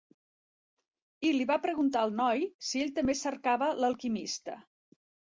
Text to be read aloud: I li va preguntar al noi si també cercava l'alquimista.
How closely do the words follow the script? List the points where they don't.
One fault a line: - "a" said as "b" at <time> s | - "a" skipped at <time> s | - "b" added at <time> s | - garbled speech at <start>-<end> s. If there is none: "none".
- "ell" added at 2.9 s